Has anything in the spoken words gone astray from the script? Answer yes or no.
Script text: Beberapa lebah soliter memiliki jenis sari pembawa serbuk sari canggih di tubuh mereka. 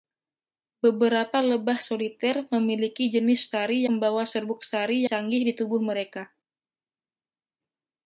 no